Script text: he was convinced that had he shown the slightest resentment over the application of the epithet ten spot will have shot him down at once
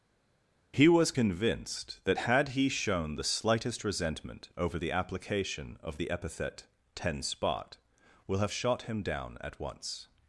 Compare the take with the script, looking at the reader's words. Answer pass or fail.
pass